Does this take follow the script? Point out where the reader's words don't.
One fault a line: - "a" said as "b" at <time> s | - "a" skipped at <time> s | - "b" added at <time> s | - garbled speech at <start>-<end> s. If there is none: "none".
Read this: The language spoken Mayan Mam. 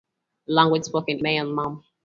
none